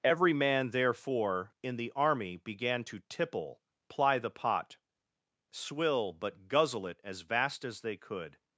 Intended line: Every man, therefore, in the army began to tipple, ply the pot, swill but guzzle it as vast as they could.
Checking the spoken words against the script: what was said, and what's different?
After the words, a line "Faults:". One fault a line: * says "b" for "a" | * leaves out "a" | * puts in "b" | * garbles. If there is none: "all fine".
Every man, therefore, in the army began to tipple, ply the pot, swill but guzzle it as vast as they could.
Faults:
all fine